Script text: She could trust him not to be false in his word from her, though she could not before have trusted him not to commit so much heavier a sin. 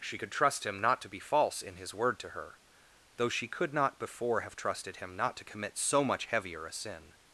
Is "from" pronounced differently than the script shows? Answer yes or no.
yes